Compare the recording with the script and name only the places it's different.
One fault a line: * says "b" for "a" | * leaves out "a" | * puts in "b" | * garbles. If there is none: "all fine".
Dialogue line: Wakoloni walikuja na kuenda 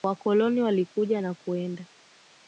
all fine